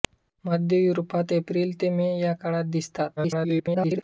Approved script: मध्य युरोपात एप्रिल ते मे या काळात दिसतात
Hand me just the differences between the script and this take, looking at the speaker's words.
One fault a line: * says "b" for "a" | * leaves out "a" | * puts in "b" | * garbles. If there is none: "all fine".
* garbles